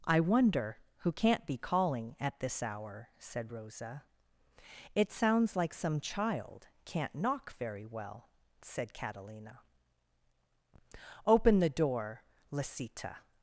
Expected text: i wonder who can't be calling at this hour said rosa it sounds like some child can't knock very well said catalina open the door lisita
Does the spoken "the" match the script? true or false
true